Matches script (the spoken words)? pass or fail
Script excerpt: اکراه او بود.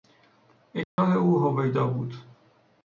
fail